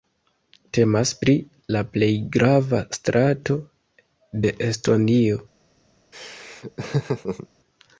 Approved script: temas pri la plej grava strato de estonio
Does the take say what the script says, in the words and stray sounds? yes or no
no